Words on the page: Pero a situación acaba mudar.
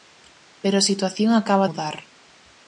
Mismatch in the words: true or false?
false